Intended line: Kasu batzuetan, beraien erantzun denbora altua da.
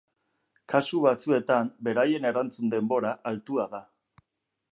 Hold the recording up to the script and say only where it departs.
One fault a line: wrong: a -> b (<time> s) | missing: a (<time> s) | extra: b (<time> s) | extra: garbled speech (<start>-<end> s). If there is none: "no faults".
no faults